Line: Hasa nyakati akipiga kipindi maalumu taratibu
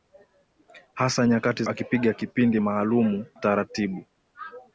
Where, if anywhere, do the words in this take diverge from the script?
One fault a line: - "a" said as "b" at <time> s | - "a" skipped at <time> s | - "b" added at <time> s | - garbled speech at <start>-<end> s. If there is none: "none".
none